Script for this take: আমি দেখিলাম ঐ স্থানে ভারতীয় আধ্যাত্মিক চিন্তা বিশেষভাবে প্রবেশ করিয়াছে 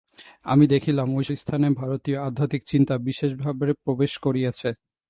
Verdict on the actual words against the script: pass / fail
pass